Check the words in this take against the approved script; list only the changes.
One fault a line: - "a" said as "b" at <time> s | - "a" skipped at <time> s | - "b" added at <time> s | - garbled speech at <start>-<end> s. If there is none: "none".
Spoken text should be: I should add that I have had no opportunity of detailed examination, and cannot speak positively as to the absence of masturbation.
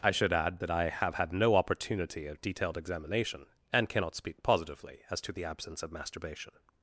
none